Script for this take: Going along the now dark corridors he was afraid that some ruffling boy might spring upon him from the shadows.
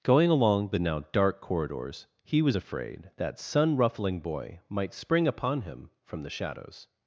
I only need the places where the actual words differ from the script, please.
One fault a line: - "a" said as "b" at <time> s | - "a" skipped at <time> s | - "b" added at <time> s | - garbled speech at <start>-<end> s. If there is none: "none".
- "some" said as "sun" at 3.4 s